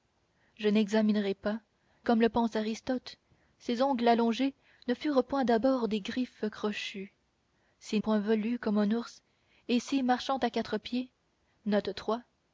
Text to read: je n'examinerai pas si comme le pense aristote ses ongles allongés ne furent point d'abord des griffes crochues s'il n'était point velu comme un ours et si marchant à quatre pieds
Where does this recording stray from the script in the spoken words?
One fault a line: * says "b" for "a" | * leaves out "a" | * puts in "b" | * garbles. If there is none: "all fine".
* leaves out "si"
* leaves out "n'était"